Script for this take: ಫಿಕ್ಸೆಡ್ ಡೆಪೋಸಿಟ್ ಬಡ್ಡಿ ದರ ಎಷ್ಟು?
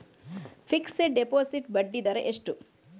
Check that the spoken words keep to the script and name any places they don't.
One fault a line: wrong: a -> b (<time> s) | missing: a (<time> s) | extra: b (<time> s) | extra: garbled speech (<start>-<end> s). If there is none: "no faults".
no faults